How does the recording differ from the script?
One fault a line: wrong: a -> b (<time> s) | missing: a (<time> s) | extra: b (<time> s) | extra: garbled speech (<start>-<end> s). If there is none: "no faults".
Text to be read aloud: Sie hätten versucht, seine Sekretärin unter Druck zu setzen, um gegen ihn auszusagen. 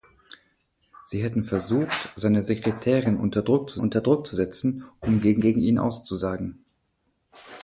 extra: unter Druck zu (3.8 s)
extra: gegen (5.4 s)